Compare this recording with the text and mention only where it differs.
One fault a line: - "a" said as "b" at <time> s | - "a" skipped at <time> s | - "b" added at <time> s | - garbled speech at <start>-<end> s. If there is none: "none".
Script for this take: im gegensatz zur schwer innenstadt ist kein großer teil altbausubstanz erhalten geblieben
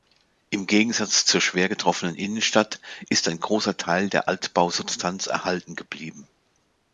- "getroffenen" added at 1.7 s
- "kein" said as "ein" at 3.3 s
- "der" added at 4.1 s